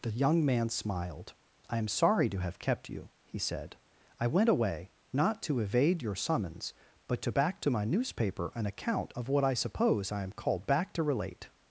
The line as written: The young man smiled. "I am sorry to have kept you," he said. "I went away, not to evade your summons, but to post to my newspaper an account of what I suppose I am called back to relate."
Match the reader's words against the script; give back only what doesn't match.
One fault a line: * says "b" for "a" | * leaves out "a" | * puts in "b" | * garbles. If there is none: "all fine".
* says "back" for "post"